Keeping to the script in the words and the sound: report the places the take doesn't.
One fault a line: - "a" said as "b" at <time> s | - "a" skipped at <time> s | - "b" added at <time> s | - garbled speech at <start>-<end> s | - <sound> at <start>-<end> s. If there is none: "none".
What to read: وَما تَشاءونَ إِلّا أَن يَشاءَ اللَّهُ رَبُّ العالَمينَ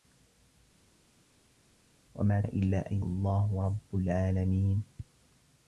- "تَشاءونَ" skipped at 2.4 s
- "يَشاءَ" skipped at 3.0 s